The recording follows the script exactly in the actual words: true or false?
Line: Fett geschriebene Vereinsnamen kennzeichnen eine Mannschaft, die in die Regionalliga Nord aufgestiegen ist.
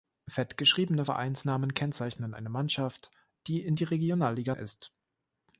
false